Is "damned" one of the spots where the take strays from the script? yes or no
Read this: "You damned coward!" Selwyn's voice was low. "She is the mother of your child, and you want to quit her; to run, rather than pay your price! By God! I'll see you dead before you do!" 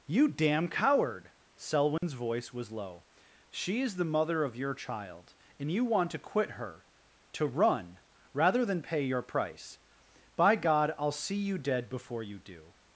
yes